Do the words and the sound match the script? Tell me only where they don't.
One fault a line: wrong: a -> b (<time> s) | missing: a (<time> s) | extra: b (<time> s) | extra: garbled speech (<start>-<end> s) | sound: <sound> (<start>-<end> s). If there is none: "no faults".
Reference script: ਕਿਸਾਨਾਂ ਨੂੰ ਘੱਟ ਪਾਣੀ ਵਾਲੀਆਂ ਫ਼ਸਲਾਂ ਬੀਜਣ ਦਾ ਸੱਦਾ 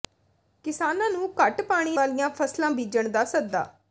no faults